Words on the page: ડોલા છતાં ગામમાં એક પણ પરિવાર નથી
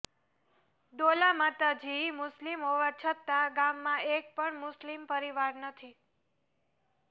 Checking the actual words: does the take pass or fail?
fail